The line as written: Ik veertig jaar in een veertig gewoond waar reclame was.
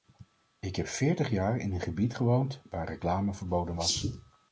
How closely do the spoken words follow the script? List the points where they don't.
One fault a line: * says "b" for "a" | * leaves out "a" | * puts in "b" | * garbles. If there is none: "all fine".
* puts in "heb"
* says "gebied" for "veertig"
* puts in "verboden"